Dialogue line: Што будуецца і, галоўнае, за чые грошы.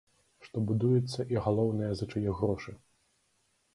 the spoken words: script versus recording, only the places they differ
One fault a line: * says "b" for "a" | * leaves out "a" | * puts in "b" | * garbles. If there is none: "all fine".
all fine